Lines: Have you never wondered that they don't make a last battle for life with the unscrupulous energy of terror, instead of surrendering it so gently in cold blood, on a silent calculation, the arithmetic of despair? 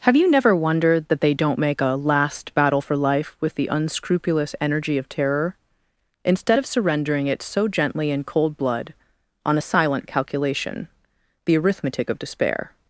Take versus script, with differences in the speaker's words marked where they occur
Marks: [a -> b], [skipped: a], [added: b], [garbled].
Have you never wondered that they don't make a last battle for life with the unscrupulous energy of terror, instead of surrendering it so gently in cold blood, on a silent calculation, the arithmetic of despair?